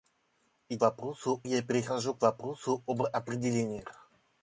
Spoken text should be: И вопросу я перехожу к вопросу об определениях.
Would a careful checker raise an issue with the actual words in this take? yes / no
no